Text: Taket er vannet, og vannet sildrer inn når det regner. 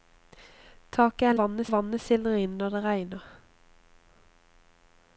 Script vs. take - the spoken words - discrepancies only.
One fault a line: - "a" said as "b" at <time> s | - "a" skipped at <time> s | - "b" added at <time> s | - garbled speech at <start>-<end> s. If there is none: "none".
none